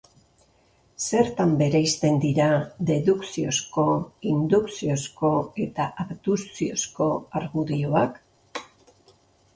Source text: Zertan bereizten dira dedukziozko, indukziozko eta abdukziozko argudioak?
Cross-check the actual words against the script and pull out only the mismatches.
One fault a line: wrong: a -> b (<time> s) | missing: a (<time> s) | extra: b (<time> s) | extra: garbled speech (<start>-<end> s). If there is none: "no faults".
no faults